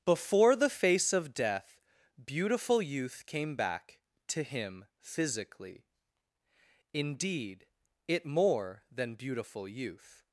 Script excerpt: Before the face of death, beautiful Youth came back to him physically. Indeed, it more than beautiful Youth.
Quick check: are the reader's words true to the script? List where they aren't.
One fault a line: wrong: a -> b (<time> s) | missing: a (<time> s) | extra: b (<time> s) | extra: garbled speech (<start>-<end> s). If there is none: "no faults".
no faults